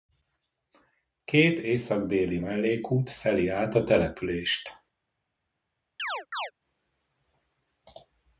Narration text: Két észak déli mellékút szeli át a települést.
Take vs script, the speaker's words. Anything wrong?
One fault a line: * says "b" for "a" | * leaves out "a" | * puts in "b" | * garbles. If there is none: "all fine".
all fine